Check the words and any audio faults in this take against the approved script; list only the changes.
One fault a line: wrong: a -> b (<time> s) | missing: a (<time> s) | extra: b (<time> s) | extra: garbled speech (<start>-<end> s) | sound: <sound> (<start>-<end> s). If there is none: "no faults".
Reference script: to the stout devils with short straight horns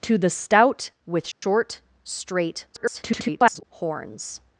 missing: devils (0.9 s)
sound: dropout (1.3-1.4 s)
extra: garbled speech (2.7-3.6 s)